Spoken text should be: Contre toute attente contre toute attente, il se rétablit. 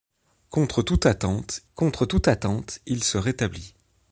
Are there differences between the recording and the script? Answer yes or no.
no